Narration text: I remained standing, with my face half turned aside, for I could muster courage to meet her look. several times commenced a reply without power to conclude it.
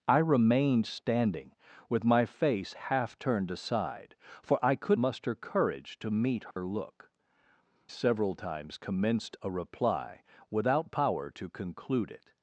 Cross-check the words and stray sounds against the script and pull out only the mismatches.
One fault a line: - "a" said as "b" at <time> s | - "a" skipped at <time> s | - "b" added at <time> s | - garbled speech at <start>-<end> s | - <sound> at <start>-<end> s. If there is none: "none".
- dropout at 6.5-6.6 s